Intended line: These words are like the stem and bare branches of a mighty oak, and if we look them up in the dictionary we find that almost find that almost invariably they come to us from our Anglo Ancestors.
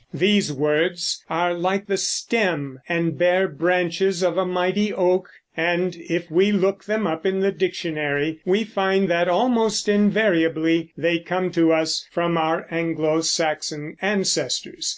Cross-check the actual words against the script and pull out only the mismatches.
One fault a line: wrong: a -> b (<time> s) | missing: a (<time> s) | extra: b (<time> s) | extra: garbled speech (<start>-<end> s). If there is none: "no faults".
missing: find that almost (9.9 s)
extra: Saxon (13.2 s)